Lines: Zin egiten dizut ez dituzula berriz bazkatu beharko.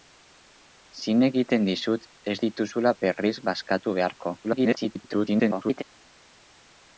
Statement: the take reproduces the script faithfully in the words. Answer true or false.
false